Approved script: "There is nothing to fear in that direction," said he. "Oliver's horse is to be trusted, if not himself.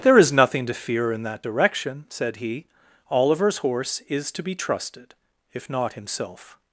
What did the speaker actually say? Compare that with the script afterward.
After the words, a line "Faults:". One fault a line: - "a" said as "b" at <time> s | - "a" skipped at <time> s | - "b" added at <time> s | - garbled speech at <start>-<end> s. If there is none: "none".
"There is nothing to fear in that direction," said he. "Oliver's horse is to be trusted, if not himself.
Faults:
none